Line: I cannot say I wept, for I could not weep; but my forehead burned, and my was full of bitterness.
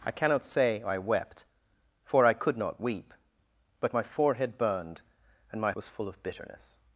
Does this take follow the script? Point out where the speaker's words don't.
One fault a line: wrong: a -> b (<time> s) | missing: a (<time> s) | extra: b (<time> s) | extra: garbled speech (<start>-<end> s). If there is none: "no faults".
no faults